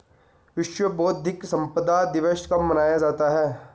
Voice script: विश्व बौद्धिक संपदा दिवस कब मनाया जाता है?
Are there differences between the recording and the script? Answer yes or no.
no